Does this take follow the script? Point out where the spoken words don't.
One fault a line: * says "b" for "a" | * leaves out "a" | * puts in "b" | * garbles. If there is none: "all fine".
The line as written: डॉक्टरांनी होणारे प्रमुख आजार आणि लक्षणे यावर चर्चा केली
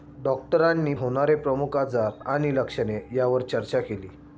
all fine